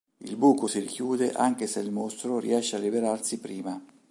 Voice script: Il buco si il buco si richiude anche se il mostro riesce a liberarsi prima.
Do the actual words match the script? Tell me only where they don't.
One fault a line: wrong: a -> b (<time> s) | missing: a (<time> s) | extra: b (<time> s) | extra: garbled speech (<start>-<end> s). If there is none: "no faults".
missing: il buco si (0.8 s)